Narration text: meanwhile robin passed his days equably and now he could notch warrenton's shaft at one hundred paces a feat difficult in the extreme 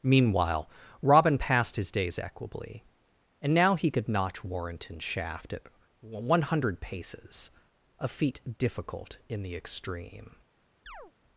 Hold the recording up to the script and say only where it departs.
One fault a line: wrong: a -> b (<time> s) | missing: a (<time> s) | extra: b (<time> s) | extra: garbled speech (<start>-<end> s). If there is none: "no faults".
no faults